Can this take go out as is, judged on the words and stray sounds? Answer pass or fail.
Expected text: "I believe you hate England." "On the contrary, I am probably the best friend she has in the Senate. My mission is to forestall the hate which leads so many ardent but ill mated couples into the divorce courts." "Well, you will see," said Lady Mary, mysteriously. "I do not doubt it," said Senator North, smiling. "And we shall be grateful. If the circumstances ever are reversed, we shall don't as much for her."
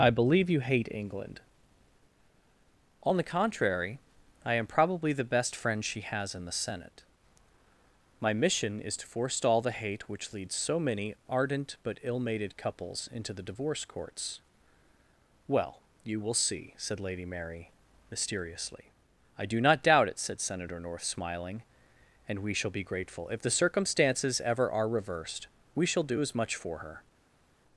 fail